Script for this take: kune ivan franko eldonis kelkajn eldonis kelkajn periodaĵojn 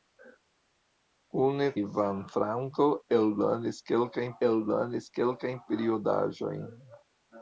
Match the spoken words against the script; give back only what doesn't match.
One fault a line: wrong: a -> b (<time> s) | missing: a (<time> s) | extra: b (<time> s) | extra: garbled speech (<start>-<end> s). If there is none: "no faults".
no faults